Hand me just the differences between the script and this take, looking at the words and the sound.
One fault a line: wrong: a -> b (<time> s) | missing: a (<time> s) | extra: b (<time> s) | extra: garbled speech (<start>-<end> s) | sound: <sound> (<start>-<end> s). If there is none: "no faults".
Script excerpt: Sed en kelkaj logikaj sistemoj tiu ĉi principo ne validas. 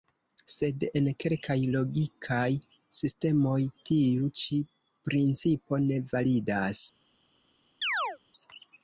sound: chirp (7.8-8.2 s)